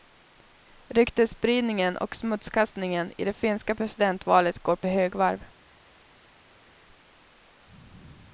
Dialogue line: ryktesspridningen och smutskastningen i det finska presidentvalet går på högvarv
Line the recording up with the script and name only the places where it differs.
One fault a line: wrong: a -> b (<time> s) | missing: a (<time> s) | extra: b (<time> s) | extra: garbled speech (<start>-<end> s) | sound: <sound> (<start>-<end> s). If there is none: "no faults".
no faults